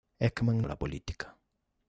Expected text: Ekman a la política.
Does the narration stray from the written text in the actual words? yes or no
no